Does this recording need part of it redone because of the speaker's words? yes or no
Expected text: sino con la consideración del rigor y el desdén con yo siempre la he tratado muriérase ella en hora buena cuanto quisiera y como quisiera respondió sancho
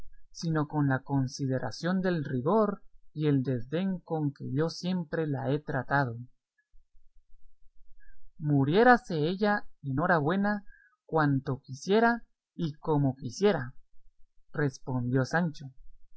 yes